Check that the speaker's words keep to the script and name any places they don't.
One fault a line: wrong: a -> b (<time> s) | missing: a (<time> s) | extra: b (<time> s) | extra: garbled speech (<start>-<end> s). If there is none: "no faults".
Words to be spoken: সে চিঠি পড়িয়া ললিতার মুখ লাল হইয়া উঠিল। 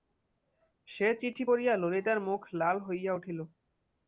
no faults